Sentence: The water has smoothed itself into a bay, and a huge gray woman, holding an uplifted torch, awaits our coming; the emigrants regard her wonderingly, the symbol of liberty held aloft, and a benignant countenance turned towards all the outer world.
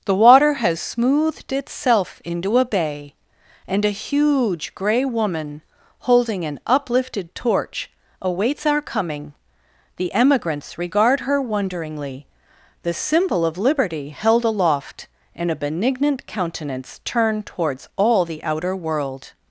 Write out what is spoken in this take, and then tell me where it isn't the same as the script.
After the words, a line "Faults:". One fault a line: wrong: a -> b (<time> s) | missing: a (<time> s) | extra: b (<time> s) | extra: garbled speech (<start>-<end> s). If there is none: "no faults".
The water has smoothed itself into a bay, and a huge gray woman, holding an uplifted torch, awaits our coming; the emigrants regard her wonderingly, the symbol of liberty held aloft, and a benignant countenance turned towards all the outer world.
Faults:
no faults